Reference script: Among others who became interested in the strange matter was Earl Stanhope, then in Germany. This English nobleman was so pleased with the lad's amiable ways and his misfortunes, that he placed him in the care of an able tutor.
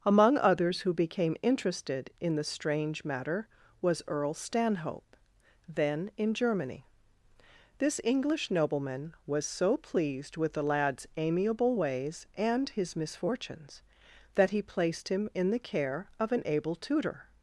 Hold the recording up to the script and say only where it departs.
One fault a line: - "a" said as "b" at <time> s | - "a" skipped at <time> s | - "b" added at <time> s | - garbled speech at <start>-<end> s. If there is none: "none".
none